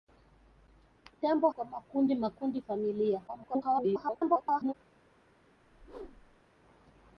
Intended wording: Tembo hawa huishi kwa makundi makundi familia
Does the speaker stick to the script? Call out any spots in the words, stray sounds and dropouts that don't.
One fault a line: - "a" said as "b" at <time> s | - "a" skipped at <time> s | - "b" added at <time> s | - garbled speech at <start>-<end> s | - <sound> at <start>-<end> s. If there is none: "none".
- "hawa huishi" skipped at 1.5 s
- garbled speech at 3.3-4.7 s
- whoosh at 5.6-6.4 s